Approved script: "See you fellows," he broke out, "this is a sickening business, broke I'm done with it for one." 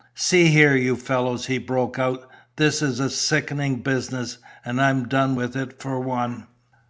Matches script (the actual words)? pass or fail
fail